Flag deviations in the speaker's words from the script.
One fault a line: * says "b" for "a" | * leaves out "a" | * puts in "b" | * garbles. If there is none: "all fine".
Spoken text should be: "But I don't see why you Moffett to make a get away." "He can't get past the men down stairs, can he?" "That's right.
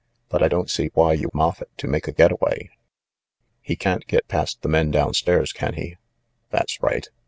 all fine